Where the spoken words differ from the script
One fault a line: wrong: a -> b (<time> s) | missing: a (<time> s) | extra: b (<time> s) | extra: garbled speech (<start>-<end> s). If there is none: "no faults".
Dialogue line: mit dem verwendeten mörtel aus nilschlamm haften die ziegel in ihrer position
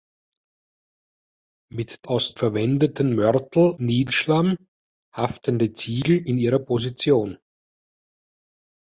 wrong: dem -> aus (2.1 s)
missing: aus (3.7 s)